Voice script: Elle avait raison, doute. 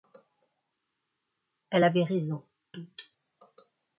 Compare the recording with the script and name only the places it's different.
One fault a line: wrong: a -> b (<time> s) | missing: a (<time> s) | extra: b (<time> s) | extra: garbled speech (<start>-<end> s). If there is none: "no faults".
no faults